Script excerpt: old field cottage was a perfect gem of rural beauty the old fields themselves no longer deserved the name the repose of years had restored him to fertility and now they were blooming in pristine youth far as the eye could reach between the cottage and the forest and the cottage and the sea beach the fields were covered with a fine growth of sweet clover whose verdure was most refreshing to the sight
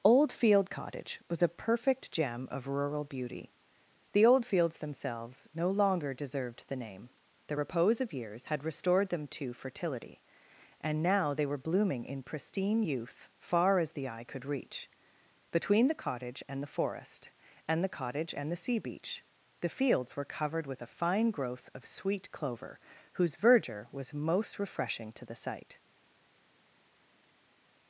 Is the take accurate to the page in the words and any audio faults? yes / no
no